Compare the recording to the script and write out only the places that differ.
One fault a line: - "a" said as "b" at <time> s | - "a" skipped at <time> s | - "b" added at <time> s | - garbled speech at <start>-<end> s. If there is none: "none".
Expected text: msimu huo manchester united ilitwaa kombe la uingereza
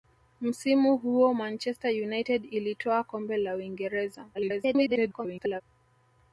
- garbled speech at 4.3-5.6 s